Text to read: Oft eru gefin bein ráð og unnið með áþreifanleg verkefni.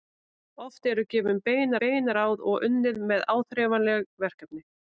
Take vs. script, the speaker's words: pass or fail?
fail